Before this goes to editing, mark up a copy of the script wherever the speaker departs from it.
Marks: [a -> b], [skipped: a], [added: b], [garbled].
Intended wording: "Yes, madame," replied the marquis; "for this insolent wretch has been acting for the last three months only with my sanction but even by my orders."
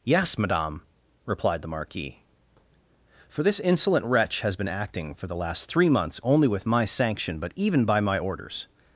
"Yes, madame," replied the marquis; "for this insolent wretch has been acting for the last three months only with my sanction but even by my orders."